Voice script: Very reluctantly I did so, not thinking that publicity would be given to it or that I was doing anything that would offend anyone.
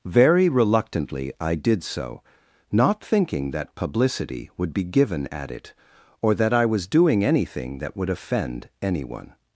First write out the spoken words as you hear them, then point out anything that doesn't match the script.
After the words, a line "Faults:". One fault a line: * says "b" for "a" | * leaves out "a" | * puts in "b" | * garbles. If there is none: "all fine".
Very reluctantly I did so, not thinking that publicity would be given at it or that I was doing anything that would offend anyone.
Faults:
* says "at" for "to"